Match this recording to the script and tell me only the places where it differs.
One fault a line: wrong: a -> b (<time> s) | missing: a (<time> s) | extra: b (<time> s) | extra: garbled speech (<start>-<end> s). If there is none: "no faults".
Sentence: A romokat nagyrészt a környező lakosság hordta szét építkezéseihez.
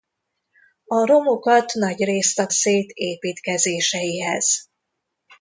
missing: környező lakosság hordta (2.5 s)